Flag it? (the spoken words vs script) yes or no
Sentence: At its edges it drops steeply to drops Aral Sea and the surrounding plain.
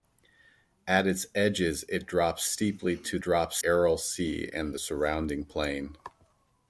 no